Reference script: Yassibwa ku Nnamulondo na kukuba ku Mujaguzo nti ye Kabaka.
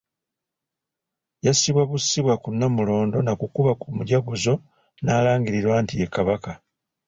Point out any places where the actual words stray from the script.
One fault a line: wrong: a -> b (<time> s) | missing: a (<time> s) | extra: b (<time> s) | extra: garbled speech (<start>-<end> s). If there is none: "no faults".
extra: bussibwa (1.9 s)
extra: n'alangirirwa (5.0 s)